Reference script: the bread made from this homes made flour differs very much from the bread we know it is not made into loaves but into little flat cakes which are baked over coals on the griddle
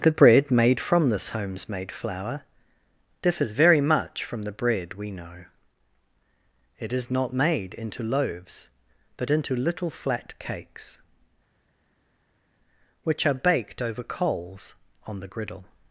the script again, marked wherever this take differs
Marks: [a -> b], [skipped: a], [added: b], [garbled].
the bread made from this homes made flour differs very much from the bread we know it is not made into loaves but into little flat cakes which are baked over coals on the griddle